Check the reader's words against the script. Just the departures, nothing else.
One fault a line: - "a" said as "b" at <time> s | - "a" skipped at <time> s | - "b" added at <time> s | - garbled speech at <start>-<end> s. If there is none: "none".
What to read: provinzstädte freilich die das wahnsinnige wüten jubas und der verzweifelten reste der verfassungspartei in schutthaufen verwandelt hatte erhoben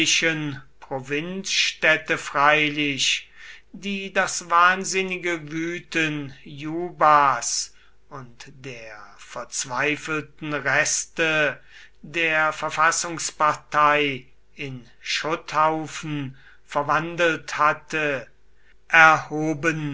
none